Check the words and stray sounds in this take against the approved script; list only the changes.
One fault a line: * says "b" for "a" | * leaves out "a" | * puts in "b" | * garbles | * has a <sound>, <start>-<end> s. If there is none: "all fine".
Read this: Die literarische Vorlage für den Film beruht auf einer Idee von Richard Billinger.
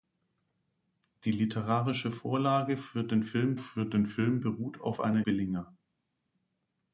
* puts in "für den Film"
* leaves out "Idee von Richard"